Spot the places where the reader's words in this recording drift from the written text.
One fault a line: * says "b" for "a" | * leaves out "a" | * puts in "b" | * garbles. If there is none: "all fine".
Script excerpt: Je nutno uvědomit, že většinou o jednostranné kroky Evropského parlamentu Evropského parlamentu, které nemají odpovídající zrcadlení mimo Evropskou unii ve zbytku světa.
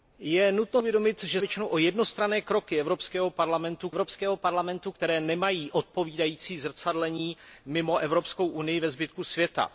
all fine